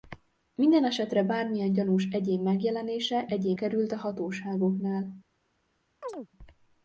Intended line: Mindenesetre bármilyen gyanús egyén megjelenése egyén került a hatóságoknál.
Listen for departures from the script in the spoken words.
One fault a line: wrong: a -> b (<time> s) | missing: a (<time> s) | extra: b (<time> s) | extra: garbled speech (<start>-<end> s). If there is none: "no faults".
no faults